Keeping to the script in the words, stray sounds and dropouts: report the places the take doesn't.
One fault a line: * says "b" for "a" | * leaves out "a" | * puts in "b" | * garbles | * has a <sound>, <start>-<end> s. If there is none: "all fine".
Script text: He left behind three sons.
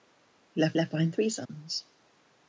* puts in "left"
* has a dropout, 1.5-1.5 s